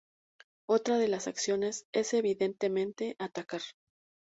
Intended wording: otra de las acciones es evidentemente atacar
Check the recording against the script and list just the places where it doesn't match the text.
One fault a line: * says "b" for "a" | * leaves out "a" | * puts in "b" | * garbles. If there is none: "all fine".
all fine